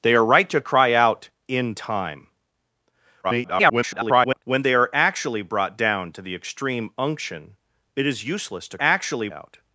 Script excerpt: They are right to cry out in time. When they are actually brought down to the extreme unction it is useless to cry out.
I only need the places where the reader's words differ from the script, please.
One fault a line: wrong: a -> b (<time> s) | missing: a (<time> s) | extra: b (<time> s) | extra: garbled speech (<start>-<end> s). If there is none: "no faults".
extra: garbled speech (3.2-4.4 s)
wrong: cry -> actually (8.8 s)